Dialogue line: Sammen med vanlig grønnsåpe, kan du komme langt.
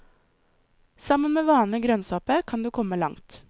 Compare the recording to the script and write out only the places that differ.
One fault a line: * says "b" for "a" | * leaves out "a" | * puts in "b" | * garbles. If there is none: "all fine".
all fine